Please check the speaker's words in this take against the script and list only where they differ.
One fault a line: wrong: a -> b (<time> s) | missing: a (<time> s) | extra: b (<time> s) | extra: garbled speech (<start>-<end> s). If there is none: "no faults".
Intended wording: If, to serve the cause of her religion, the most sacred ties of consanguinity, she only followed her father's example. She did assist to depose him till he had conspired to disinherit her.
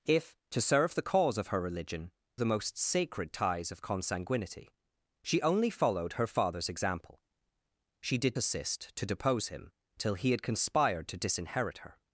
no faults